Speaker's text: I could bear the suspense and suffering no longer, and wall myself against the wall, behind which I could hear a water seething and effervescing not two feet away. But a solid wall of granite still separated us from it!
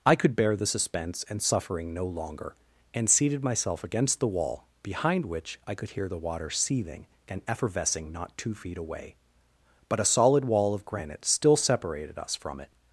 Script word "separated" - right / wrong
right